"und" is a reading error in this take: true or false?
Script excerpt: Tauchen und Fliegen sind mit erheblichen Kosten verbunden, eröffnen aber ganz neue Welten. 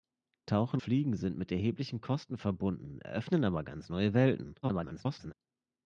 true